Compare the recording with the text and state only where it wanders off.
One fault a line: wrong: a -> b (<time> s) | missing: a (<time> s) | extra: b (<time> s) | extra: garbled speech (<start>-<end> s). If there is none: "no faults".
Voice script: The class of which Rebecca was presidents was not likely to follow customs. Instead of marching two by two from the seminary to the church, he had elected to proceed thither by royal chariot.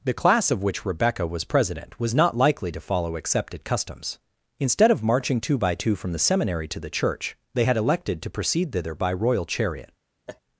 wrong: presidents -> president (1.4 s)
extra: accepted (3.1 s)
wrong: he -> they (7.5 s)